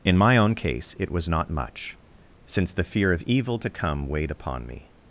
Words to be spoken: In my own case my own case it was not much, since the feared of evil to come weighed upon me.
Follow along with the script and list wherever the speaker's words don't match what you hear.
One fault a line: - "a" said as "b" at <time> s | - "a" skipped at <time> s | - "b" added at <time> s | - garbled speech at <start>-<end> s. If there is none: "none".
- "my own case" skipped at 0.9 s
- "feared" said as "fear" at 2.8 s